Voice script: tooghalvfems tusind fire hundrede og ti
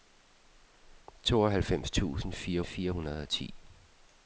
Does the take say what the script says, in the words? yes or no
no